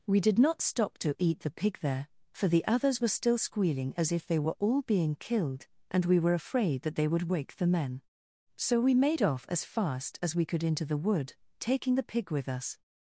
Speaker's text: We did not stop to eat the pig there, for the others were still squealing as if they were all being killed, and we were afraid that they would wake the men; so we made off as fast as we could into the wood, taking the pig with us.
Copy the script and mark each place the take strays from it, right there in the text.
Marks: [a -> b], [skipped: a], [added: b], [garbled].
We did not stop to eat the pig there, for the others were still squealing as if they were all being killed, and we were afraid that they would wake the men; so we made off as fast as we could into the wood, taking the pig with us.